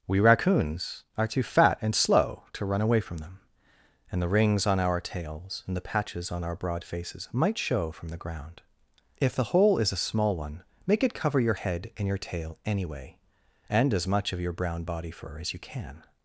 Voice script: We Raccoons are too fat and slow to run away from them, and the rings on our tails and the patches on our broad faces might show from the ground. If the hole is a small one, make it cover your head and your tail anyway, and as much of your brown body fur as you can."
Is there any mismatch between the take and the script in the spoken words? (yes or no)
no